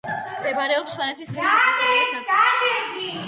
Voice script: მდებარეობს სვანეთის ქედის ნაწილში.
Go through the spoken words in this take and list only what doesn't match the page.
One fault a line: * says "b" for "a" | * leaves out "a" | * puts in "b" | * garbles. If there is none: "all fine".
* puts in "აღმოსავლეთ"